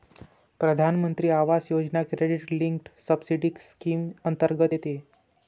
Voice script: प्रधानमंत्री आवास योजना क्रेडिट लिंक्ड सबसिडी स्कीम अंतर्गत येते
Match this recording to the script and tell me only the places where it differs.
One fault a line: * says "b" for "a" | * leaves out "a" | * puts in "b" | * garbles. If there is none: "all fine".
all fine